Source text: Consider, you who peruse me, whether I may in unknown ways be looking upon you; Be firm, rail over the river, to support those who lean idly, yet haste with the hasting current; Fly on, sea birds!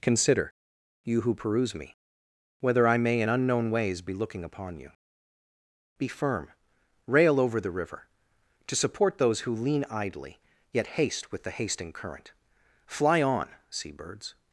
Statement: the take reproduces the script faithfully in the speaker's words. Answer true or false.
true